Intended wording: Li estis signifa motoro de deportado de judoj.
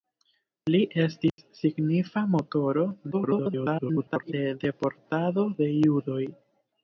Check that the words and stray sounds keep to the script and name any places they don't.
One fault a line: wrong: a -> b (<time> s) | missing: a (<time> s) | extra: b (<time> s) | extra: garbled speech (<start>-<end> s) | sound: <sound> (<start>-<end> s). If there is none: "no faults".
sound: dropout (1.3-1.4 s)
extra: garbled speech (3.1-4.3 s)